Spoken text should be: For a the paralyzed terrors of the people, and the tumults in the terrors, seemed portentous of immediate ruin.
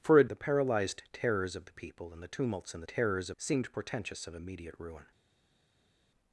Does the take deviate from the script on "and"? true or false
false